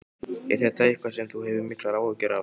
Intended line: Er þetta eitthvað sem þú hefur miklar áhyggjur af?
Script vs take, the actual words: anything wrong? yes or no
no